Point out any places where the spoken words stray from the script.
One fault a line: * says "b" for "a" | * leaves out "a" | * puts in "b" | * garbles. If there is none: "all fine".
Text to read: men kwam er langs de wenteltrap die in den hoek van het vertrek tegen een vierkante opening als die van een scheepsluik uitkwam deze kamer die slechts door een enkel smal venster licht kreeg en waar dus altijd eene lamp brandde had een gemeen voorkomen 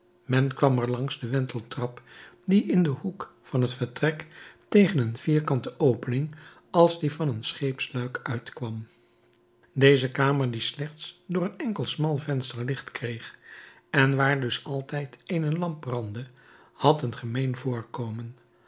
all fine